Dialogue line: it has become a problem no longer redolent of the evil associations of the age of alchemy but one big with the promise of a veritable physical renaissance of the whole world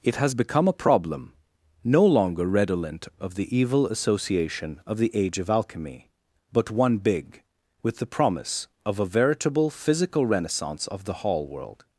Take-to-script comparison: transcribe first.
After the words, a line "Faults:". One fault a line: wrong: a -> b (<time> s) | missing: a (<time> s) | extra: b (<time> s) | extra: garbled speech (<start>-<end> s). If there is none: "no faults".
it has become a problem no longer redolent of the evil association of the age of alchemy but one big with the promise of a veritable physical renaissance of the hall world
Faults:
wrong: associations -> association (3.9 s)
wrong: whole -> hall (11.1 s)